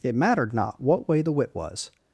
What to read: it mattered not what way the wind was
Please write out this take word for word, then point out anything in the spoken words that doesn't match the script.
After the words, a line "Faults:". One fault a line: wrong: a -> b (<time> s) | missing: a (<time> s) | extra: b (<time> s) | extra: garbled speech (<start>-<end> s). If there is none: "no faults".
it mattered not what way the wit was
Faults:
wrong: wind -> wit (1.3 s)